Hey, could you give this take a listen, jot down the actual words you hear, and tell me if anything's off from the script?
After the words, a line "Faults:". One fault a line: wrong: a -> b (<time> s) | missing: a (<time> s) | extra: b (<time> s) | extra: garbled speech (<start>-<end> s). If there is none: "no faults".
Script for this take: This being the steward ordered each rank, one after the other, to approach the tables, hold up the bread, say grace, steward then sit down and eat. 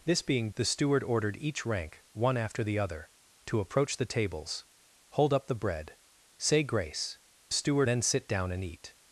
This being the steward ordered each rank, one after the other, to approach the tables, hold up the bread, say grace, steward then sit down and eat.
Faults:
no faults